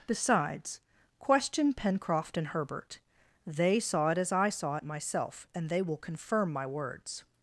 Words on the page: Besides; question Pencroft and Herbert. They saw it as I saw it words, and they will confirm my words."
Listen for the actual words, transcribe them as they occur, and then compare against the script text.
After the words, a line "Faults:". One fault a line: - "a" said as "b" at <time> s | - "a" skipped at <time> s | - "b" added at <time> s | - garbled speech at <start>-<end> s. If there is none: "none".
Besides; question Pencroft and Herbert. They saw it as I saw it myself, and they will confirm my words."
Faults:
- "words" said as "myself" at 4.8 s